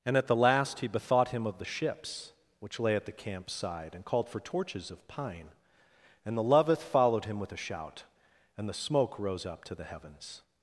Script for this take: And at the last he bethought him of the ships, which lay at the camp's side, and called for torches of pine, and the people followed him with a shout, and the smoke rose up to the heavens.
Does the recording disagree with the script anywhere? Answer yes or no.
yes